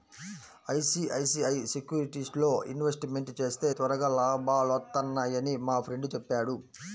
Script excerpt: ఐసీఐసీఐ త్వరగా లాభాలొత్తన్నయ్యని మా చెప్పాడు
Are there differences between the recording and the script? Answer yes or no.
yes